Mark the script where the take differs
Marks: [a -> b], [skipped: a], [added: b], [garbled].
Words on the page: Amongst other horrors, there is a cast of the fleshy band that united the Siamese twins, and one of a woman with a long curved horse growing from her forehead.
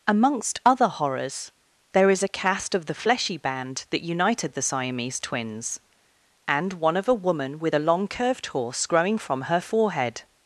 Amongst other horrors, there is a cast of the fleshy band that united the Siamese twins, and one of a woman with a long curved horse growing from her forehead.